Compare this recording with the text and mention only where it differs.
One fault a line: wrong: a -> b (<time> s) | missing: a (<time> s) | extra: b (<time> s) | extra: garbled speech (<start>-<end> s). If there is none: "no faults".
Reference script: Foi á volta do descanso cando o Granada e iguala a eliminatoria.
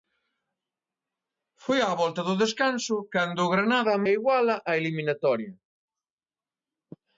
no faults